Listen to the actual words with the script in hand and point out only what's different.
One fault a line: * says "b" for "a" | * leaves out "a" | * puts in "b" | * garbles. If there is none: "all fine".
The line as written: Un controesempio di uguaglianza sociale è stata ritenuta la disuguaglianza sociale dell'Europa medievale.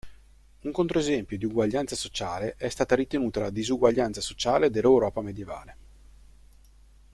all fine